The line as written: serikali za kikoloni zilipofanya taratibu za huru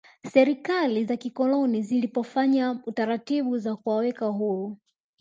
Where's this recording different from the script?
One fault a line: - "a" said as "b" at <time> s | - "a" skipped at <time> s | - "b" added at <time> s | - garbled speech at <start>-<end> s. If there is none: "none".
- "kuwaweka" added at 3.7 s